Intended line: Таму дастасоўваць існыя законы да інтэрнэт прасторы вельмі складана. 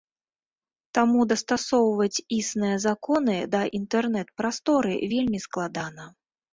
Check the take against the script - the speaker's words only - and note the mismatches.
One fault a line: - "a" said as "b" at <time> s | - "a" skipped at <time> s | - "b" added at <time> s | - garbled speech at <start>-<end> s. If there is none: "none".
none